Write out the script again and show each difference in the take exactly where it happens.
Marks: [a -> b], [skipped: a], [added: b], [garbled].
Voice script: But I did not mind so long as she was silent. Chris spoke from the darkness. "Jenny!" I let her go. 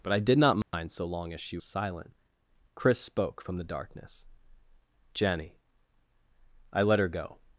But I did not mind so long as she [skipped: was] silent. Chris spoke from the darkness. "Jenny!" I let her go.